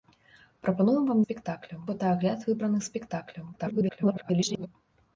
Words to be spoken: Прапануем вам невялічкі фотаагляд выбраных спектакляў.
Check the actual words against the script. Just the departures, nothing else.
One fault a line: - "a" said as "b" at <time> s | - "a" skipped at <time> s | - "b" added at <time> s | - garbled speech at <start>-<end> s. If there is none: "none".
- "невялічкі" said as "спектакляў" at 1.2 s
- garbled speech at 3.5-4.7 s